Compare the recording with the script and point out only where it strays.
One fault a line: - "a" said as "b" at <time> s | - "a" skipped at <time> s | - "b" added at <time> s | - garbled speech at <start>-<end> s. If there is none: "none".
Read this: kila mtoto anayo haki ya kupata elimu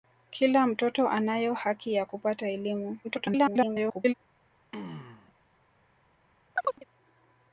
- garbled speech at 3.0-4.1 s